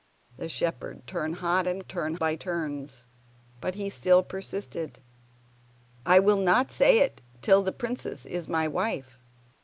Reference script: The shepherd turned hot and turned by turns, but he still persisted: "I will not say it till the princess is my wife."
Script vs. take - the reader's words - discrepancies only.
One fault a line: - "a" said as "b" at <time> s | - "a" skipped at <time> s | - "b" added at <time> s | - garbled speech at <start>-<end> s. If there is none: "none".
none